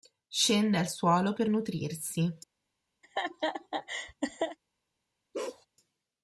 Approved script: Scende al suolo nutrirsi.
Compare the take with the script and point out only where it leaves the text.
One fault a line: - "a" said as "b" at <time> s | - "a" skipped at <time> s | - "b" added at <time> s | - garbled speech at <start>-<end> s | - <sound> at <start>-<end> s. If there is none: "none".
- "per" added at 1.3 s
- laugh at 3.0-4.6 s
- bark at 5.3-5.7 s